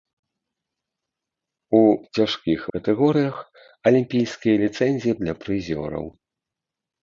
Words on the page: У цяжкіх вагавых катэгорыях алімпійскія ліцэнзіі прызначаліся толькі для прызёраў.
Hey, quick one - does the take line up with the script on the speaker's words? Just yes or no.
no